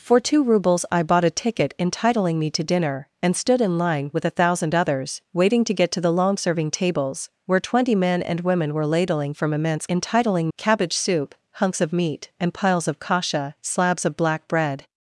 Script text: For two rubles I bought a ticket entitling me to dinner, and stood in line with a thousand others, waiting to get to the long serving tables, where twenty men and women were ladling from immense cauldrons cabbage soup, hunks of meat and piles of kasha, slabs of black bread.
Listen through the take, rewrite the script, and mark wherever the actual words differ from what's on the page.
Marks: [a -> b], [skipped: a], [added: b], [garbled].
For two rubles I bought a ticket entitling me to dinner, and stood in line with a thousand others, waiting to get to the long serving tables, where twenty men and women were ladling from immense [cauldrons -> entitling] cabbage soup, hunks of meat and piles of kasha, slabs of black bread.